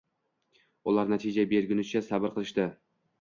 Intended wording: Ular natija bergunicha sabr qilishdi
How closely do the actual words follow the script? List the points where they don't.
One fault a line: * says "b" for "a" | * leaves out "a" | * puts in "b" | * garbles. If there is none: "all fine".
all fine